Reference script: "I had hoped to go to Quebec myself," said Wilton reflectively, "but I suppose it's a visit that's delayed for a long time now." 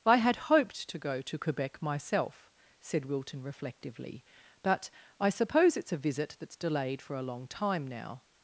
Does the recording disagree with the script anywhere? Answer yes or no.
no